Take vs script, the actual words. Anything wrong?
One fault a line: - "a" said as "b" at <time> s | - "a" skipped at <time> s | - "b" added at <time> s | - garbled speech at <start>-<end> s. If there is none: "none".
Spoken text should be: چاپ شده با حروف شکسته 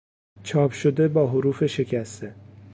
none